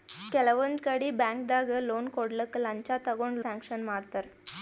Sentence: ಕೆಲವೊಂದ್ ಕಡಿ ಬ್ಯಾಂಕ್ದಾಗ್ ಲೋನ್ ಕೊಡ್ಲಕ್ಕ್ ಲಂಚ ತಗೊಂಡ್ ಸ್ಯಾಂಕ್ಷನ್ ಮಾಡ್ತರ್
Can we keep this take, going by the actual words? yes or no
yes